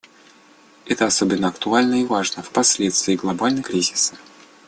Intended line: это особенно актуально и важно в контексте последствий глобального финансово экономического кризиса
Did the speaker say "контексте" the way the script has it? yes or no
no